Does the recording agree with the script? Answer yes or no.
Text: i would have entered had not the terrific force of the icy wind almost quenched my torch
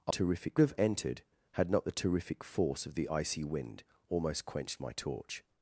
no